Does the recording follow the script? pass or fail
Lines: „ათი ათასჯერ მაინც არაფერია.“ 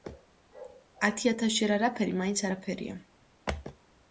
fail